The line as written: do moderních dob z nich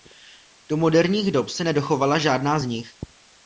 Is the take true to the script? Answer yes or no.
no